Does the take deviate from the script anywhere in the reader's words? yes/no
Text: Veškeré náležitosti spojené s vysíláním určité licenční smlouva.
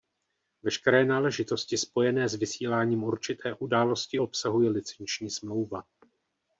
yes